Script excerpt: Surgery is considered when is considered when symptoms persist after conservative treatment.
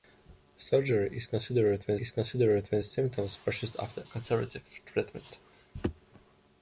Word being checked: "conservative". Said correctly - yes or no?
yes